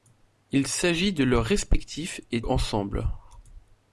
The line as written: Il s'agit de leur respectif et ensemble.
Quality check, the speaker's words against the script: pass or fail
pass